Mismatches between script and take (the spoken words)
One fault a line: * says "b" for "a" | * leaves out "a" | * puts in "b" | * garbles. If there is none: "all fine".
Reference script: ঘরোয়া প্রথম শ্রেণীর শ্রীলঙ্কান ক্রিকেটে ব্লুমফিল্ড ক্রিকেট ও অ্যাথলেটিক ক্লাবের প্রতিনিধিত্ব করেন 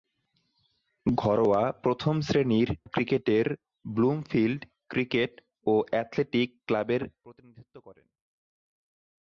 * leaves out "শ্রীলঙ্কান"